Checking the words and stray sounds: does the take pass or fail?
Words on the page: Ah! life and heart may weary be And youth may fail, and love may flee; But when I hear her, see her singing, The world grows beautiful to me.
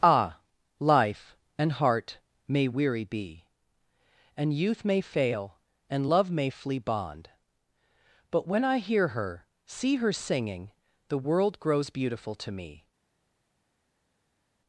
fail